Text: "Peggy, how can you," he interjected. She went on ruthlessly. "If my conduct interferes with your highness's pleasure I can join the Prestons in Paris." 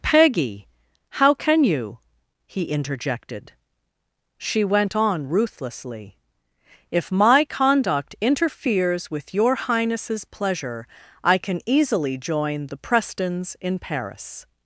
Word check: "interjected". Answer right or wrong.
right